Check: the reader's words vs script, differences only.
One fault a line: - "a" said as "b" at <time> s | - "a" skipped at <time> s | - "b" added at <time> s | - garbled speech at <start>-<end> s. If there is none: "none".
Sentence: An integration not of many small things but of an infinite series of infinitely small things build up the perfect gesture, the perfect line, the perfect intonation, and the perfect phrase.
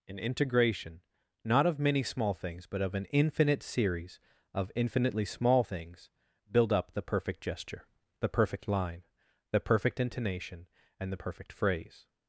none